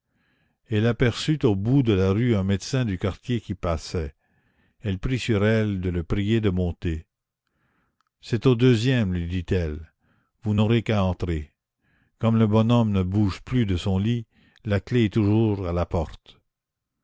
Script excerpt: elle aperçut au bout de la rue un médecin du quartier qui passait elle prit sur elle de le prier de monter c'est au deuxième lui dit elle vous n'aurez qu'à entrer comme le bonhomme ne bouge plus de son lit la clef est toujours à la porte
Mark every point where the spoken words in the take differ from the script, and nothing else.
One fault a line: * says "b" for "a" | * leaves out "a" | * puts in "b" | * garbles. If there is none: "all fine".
all fine